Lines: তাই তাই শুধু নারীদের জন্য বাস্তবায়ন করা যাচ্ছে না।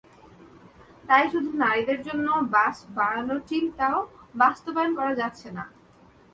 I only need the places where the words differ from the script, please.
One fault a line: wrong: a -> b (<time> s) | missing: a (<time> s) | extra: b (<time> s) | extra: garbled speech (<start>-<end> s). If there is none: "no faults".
missing: তাই (1.2 s)
extra: বাস বাড়ানোর চিন্তাও (2.5 s)